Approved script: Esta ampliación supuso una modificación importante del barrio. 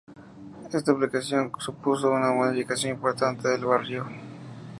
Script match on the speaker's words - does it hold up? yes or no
yes